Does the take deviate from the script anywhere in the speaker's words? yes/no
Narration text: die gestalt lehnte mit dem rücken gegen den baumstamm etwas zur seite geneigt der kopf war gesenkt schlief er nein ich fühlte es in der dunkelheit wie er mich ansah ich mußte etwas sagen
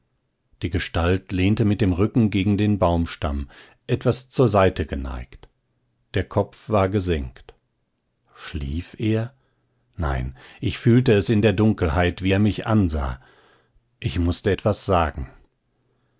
no